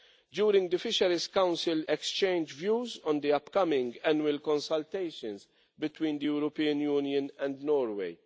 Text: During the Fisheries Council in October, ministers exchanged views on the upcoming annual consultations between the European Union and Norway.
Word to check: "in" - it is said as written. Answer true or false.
false